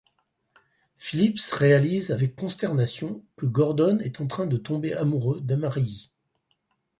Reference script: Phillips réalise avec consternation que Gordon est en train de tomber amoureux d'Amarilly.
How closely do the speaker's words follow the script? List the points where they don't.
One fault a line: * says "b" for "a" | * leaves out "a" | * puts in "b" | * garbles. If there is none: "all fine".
all fine